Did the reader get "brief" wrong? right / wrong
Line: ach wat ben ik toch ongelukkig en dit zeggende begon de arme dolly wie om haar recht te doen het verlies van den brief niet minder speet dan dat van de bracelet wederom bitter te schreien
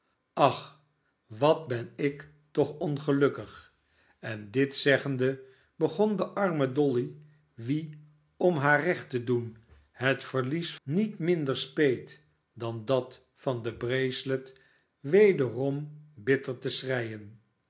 wrong